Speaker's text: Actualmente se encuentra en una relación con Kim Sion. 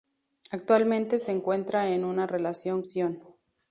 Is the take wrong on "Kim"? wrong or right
wrong